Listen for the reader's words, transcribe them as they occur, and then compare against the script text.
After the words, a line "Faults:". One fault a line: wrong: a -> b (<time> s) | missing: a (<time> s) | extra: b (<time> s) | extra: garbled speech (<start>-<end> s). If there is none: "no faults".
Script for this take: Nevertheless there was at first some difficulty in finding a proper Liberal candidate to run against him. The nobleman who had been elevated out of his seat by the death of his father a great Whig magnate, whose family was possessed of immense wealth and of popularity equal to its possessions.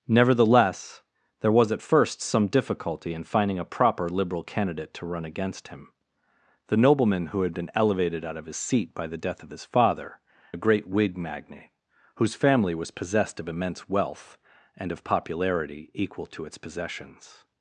Nevertheless there was at first some difficulty in finding a proper Liberal candidate to run against him. The nobleman who had been elevated out of his seat by the death of his father a great Whig magnate, whose family was possessed of immense wealth and of popularity equal to its possessions.
Faults:
no faults